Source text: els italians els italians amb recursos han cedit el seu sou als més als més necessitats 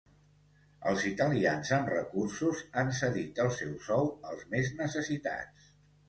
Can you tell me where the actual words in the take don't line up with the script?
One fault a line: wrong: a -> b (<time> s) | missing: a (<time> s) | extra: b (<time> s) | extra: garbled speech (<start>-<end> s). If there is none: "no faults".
missing: els italians (1.7 s)
missing: als més (4.7 s)